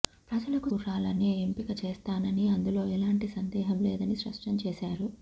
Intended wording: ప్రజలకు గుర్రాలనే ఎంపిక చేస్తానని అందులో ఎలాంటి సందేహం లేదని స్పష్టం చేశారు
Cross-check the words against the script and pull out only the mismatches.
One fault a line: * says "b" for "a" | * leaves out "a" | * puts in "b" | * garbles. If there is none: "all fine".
all fine